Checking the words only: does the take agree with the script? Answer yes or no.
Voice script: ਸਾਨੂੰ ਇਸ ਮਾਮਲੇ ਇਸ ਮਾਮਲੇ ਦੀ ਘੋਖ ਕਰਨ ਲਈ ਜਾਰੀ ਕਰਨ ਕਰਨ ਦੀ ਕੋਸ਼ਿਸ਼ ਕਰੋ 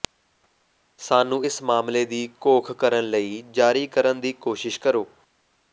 no